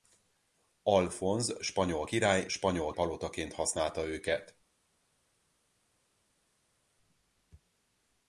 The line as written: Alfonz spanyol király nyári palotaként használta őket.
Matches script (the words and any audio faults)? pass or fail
fail